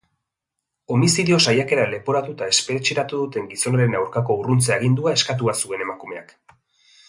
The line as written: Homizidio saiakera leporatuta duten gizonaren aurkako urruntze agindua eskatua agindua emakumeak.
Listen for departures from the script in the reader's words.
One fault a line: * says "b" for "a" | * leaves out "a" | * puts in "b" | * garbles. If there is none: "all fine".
* puts in "espetxeratu"
* says "zuen" for "agindua"